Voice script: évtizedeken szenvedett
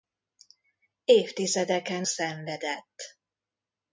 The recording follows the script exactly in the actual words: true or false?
true